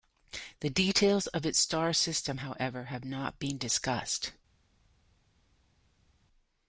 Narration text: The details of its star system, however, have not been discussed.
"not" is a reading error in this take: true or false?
false